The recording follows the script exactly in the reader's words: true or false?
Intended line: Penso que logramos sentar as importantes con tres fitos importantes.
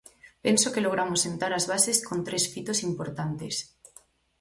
false